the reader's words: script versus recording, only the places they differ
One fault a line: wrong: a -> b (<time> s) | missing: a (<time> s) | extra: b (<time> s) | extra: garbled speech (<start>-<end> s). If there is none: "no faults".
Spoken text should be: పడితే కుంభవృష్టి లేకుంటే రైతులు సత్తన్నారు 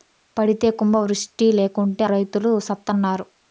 no faults